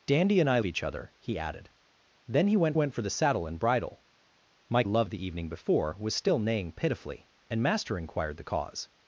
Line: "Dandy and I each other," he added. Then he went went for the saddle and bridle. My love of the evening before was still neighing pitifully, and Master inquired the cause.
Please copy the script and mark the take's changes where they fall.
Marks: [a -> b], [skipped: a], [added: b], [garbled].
"Dandy and I each other," he added. Then he went went for the saddle and bridle. My love of the evening before was still neighing pitifully, and Master inquired the cause.